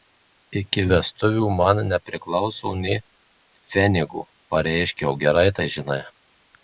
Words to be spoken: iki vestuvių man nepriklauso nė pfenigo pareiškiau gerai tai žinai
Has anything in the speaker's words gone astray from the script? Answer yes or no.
no